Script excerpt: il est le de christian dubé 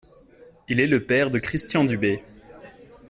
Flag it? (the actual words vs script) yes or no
yes